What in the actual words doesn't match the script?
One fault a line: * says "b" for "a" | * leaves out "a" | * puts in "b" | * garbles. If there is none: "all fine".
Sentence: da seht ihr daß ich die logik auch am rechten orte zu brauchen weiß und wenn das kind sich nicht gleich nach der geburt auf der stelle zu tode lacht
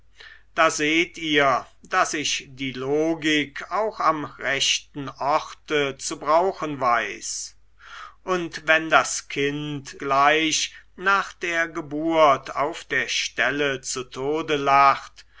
* leaves out "sich nicht"